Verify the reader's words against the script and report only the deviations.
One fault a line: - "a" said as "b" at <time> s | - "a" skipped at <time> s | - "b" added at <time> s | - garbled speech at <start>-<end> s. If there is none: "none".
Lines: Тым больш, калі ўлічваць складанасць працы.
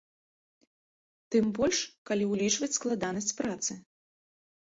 none